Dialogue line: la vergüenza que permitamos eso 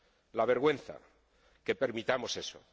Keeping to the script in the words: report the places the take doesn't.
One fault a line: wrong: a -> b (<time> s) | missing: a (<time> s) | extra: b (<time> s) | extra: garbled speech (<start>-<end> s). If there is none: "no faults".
no faults